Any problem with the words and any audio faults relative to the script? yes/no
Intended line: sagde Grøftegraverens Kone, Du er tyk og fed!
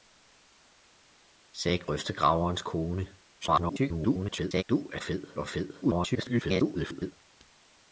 yes